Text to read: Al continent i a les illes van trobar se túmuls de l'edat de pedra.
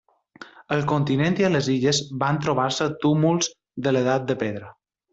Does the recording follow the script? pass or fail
pass